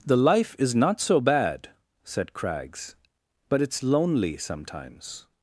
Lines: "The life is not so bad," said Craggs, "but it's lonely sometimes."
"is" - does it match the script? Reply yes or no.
yes